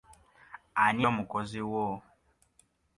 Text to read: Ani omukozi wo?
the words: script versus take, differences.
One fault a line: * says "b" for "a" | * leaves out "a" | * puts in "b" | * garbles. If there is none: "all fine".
all fine